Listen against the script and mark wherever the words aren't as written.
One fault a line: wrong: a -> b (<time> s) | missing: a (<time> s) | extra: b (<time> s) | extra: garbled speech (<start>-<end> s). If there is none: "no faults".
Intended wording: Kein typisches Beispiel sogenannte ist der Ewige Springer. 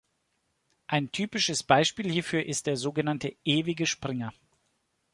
wrong: Kein -> Ein (0.9 s)
wrong: sogenannte -> hierfür (2.1 s)
extra: sogenannte (2.8 s)